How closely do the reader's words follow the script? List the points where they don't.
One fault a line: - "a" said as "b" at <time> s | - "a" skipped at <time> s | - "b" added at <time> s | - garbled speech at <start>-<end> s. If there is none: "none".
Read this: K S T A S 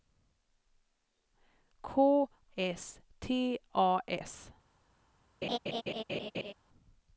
none